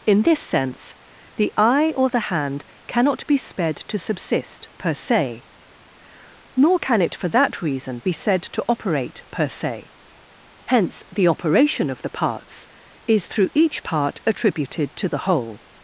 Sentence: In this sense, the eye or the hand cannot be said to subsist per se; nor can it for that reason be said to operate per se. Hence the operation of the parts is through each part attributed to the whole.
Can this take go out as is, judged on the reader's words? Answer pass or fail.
fail